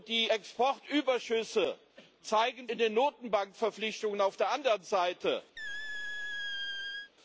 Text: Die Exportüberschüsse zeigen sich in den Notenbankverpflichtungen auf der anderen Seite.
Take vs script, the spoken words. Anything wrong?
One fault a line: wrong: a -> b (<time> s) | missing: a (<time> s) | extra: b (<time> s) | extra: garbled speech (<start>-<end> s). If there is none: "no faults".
missing: sich (2.7 s)